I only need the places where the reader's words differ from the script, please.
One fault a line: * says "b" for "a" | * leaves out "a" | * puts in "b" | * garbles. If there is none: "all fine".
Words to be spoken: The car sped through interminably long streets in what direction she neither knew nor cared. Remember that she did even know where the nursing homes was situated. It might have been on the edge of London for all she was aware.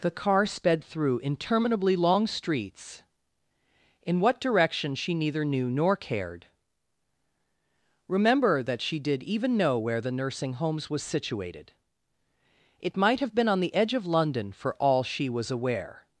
all fine